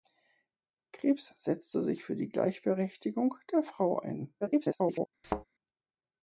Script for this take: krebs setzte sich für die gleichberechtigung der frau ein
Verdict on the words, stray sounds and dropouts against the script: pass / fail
fail